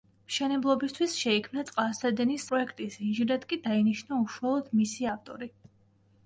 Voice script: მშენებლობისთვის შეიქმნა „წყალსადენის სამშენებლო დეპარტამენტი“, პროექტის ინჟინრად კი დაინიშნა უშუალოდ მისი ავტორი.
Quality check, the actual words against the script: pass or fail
fail